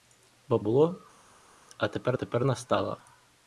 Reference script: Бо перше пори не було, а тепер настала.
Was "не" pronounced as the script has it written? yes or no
no